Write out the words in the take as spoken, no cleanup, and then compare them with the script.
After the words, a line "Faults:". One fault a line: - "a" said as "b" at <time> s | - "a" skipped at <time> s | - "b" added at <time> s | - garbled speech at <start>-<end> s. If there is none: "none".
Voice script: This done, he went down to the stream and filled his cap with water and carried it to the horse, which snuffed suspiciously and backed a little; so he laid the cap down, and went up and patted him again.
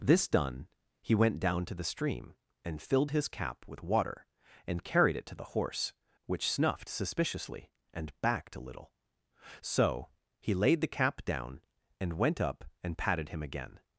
This done, he went down to the stream and filled his cap with water and carried it to the horse, which snuffed suspiciously and backed a little; so he laid the cap down, and went up and patted him again.
Faults:
none